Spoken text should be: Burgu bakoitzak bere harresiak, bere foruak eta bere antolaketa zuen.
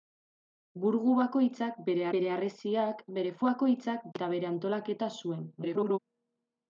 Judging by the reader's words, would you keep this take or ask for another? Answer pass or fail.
fail